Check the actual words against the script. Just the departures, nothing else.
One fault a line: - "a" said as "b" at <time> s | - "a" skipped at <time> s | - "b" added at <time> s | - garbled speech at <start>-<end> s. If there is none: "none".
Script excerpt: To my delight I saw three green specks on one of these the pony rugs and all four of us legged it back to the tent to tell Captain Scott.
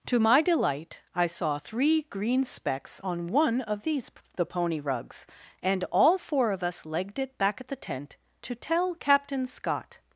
- "to" said as "at" at 7.6 s